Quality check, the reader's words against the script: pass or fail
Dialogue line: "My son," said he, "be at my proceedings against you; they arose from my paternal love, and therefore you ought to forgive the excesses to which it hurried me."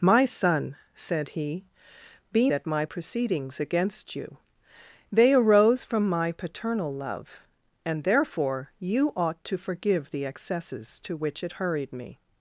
pass